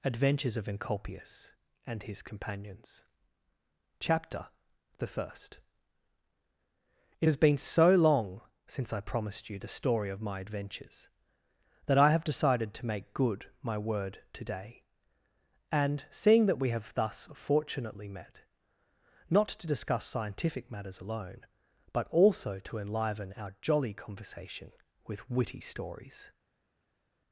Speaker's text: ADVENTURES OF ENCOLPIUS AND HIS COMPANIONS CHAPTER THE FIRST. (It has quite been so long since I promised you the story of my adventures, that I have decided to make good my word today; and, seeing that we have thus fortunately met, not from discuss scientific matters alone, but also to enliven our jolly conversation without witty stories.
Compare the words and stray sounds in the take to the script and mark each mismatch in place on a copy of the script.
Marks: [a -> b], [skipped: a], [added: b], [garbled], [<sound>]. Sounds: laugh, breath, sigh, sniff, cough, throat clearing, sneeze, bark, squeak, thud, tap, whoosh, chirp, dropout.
ADVENTURES OF ENCOLPIUS AND HIS COMPANIONS CHAPTER THE FIRST. (It has [skipped: quite] been so long since I promised you the story of my adventures, that I have decided to make good my word today; and, seeing that we have thus fortunately met, not [from -> to] discuss scientific matters alone, but also to enliven our jolly conversation [without -> with] witty stories.